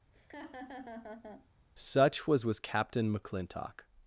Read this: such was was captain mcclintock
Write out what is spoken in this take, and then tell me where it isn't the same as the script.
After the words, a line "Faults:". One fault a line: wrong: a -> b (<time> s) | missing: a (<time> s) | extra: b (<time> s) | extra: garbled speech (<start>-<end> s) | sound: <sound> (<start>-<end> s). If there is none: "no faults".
such was was captain mcclintock
Faults:
sound: laugh (0.1-1.5 s)